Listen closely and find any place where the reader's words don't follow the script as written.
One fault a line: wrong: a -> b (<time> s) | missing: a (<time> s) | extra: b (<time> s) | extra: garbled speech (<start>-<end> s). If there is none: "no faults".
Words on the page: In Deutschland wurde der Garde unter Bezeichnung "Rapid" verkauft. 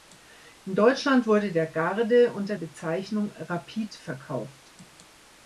no faults